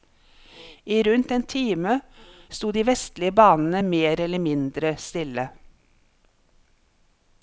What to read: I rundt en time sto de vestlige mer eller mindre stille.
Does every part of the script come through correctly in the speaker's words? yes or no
no